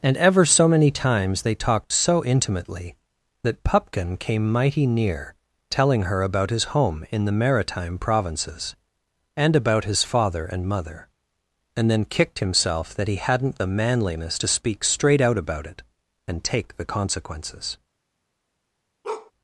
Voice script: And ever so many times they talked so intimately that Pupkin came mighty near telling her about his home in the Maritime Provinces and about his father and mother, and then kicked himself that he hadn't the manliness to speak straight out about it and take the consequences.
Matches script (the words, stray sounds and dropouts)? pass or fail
fail